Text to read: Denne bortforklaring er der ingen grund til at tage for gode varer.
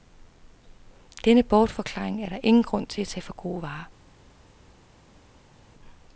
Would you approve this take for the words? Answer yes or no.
yes